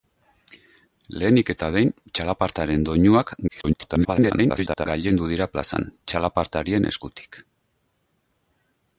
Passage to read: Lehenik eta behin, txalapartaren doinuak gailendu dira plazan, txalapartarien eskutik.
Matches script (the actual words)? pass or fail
fail